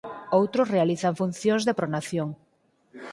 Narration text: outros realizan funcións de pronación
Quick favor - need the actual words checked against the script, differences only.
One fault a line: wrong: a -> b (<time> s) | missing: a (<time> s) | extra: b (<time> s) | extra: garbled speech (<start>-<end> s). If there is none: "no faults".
no faults